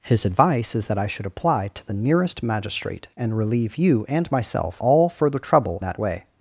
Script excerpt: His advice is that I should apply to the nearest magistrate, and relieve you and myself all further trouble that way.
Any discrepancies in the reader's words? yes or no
no